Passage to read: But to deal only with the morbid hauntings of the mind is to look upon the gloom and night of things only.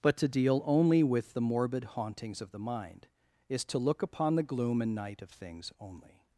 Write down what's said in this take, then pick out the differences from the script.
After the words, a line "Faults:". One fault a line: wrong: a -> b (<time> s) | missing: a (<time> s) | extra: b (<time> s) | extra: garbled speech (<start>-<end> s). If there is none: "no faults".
But to deal only with the morbid hauntings of the mind is to look upon the gloom and night of things only.
Faults:
no faults